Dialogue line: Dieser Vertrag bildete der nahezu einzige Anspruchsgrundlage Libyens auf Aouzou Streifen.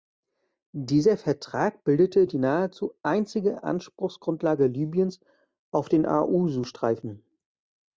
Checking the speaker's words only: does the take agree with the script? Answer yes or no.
no